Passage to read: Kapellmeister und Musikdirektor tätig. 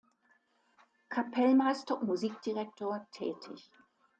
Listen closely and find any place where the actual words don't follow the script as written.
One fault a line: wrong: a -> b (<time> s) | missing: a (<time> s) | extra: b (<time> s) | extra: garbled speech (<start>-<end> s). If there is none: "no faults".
no faults